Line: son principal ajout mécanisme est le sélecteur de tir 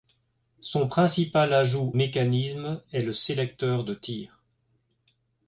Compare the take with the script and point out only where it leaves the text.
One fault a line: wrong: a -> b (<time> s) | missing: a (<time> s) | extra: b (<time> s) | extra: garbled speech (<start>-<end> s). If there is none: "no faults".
no faults